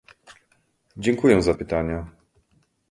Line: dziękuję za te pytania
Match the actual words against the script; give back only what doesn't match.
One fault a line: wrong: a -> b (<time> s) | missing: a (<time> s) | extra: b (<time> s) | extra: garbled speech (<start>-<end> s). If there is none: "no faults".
missing: te (1.5 s)